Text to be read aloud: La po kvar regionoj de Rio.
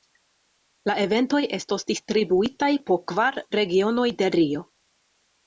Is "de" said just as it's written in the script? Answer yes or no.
yes